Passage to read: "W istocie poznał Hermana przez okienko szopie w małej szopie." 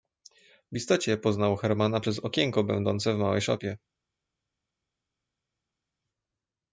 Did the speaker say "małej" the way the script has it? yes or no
yes